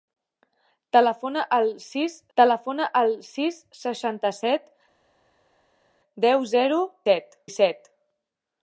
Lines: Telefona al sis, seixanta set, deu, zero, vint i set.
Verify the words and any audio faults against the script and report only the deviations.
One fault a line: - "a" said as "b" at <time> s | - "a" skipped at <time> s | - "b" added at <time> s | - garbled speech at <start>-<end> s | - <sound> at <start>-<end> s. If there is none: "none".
- "telefona al sis" added at 2.4 s
- "vint" said as "set" at 7.1 s